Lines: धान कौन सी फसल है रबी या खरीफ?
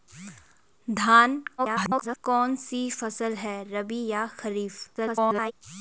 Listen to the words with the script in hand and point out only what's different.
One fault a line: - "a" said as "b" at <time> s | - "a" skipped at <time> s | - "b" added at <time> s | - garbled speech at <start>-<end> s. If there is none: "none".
- garbled speech at 1.6-2.2 s
- garbled speech at 5.0-5.5 s